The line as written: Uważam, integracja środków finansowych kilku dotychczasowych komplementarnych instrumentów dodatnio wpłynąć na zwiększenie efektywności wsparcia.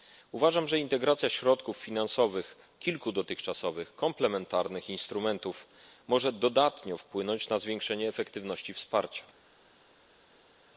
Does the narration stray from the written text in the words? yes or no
yes